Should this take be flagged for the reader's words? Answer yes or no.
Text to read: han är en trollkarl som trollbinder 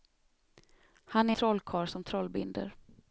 yes